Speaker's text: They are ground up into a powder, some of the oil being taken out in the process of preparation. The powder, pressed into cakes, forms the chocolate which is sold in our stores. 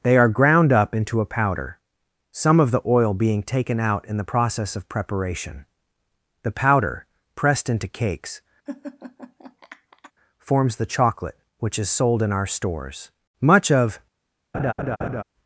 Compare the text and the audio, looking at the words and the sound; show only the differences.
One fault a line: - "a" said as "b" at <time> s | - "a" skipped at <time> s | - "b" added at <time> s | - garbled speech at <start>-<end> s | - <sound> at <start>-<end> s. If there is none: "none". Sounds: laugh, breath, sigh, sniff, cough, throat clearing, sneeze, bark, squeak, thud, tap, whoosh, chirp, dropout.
- laugh at 8.7-10.1 s
- "Much of" added at 13.4 s
- laugh at 14.5-15.2 s